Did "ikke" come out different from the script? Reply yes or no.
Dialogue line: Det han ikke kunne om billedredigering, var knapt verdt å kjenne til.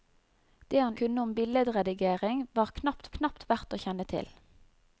yes